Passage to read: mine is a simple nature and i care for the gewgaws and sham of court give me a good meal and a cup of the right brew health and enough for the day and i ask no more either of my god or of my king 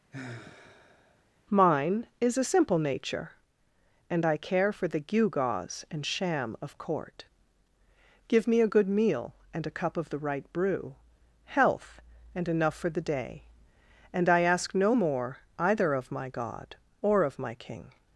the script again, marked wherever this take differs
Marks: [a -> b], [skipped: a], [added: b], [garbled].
mine is a simple nature and i care for the gewgaws and sham of court give me a good meal and a cup of the right brew health and enough for the day and i ask no more either of my god or of my king